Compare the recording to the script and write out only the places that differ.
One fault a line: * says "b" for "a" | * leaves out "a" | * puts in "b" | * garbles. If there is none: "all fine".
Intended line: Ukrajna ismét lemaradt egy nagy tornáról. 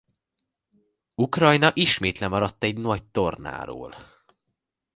all fine